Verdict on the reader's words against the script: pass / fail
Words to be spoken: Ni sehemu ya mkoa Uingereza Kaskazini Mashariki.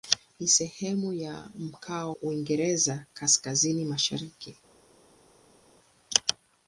pass